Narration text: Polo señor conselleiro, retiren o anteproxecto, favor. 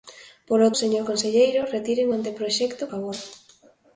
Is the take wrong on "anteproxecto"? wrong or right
right